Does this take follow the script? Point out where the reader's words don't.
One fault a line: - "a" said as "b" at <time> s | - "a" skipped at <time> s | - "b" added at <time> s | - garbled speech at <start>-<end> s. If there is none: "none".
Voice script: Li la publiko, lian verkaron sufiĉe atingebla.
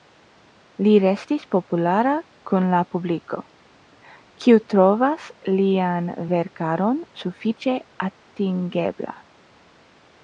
- "restis populara kun" added at 1.0 s
- "kiu trovas" added at 4.5 s